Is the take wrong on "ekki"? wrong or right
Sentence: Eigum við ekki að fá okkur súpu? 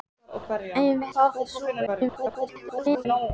wrong